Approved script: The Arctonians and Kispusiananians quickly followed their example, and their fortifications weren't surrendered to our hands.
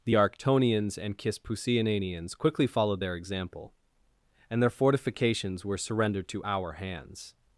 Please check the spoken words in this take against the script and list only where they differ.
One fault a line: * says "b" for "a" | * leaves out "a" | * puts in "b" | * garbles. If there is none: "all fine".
* says "were" for "weren't"